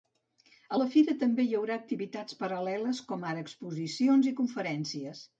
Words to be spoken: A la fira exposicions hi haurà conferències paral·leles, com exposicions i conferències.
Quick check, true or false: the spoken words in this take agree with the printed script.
false